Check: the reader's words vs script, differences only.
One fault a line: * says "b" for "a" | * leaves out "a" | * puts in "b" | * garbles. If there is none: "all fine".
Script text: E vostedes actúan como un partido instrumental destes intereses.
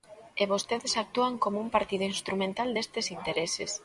all fine